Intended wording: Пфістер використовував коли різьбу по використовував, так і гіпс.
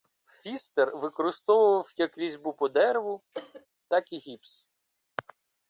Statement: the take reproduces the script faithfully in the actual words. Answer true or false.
false